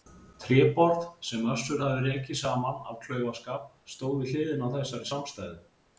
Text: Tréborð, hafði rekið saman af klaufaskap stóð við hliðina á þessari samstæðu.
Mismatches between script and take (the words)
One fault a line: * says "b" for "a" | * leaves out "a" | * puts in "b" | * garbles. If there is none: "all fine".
* puts in "sem Össur"